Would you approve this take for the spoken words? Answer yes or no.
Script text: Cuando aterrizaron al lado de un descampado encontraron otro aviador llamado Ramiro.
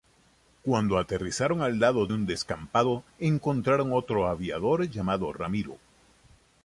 no